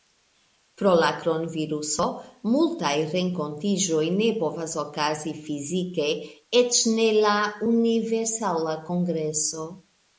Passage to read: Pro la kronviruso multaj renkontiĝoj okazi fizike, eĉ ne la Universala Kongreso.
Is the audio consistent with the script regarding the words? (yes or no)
no